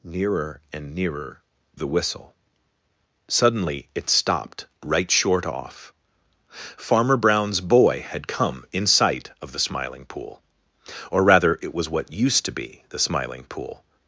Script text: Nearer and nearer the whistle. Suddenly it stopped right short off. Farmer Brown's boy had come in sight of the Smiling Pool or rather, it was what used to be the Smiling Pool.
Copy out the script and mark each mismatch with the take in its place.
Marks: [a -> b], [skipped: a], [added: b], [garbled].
Nearer and nearer the whistle. Suddenly it stopped right short off. Farmer Brown's boy had come in sight of the Smiling Pool or rather, it was what used to be the Smiling Pool.